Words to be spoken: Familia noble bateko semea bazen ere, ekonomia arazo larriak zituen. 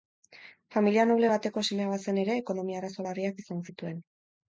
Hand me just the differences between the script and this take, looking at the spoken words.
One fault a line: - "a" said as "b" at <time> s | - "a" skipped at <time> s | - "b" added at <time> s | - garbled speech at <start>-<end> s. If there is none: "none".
- "izan" added at 3.5 s